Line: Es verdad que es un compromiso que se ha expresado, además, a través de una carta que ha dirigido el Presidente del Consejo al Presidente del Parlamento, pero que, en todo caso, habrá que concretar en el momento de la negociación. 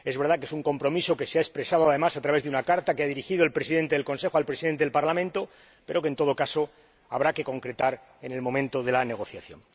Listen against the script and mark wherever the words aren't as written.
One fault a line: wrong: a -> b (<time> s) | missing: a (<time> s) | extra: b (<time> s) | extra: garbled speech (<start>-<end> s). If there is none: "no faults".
no faults